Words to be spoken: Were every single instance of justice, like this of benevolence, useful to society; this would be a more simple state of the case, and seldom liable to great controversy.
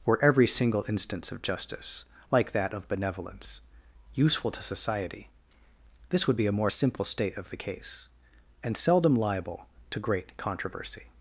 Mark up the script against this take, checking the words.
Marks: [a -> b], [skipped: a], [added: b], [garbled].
Were every single instance of justice, like [this -> that] of benevolence, useful to society; this would be a more simple state of the case, and seldom liable to great controversy.